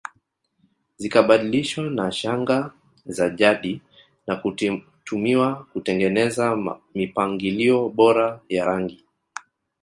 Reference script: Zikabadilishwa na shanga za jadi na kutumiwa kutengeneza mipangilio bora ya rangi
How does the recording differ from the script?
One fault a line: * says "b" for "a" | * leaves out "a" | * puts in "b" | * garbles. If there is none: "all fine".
all fine